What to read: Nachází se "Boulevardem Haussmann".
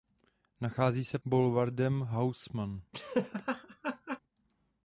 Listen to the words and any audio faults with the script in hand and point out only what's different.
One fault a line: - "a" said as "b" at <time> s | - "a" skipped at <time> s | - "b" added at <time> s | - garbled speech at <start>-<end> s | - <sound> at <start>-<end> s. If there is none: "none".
- laugh at 2.9-4.2 s